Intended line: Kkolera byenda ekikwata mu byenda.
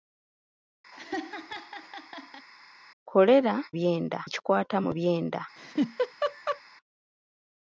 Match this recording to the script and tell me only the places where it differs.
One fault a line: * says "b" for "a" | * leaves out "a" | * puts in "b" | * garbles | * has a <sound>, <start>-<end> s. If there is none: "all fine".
* has a laugh, 0.9-2.5 s
* has a laugh, 5.6-6.6 s